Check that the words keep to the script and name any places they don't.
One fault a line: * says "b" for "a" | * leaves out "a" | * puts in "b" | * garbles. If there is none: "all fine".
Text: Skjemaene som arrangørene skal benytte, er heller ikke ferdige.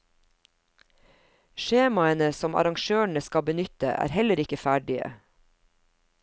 all fine